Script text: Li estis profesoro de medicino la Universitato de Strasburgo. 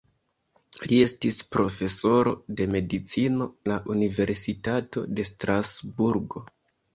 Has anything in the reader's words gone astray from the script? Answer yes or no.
no